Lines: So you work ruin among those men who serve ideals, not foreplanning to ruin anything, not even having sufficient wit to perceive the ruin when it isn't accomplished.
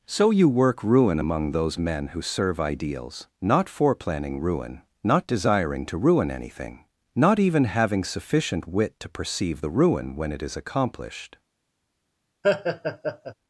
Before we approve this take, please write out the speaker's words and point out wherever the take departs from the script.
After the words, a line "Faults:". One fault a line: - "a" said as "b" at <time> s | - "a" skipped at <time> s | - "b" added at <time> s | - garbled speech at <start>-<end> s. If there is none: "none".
So you work ruin among those men who serve ideals, not foreplanning ruin, not desiring to ruin anything, not even having sufficient wit to perceive the ruin when it is accomplished.
Faults:
- "ruin not desiring" added at 4.4 s
- "isn't" said as "is" at 10.4 s